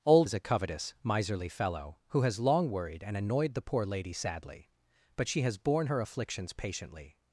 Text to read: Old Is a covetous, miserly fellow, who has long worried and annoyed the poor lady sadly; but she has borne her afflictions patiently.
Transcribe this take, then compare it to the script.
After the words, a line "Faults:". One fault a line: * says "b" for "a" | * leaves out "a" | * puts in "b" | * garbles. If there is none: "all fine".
Old Is a covetous, miserly fellow, who has long worried and annoyed the poor lady sadly; but she has borne her afflictions patiently.
Faults:
all fine